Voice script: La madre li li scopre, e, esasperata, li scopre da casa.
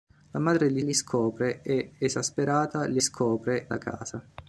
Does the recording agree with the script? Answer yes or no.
yes